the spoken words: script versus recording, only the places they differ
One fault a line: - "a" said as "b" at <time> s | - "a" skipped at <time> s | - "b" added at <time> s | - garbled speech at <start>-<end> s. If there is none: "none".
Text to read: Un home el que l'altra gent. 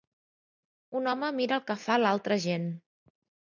- "mira" added at 1.4 s
- "fa" added at 1.9 s